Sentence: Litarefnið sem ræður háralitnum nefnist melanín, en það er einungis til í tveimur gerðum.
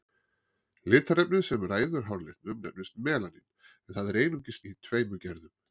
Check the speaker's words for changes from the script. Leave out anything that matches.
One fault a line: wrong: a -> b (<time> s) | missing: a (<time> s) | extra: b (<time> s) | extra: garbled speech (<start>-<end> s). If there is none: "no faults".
missing: til (4.6 s)